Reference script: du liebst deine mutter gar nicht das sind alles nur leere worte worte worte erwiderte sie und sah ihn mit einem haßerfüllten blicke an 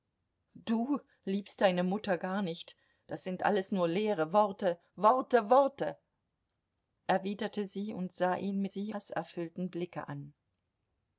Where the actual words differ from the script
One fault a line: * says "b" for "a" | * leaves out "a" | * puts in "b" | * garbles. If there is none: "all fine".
* says "sie" for "einem"